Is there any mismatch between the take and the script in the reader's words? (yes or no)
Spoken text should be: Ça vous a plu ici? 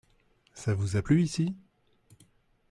no